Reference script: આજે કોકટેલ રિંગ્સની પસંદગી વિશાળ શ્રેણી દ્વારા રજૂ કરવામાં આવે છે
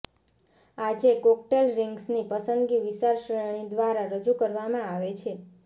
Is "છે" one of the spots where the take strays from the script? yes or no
no